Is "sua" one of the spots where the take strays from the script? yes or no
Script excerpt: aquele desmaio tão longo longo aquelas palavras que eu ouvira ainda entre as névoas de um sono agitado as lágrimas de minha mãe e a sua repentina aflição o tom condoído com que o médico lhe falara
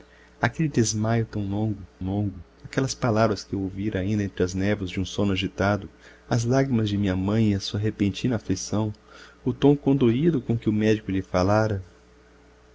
no